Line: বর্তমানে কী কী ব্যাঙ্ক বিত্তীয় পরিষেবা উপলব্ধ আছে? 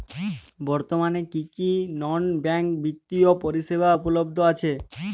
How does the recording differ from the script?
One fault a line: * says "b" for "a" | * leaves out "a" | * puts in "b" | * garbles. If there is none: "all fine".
* puts in "নন"